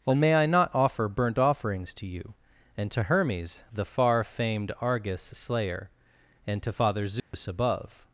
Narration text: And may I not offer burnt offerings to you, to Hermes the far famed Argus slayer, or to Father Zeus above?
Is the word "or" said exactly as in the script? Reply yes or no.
no